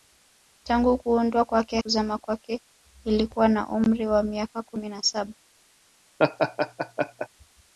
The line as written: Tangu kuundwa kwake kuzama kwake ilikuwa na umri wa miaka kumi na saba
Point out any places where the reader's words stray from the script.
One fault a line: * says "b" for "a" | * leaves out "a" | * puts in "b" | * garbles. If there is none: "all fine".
all fine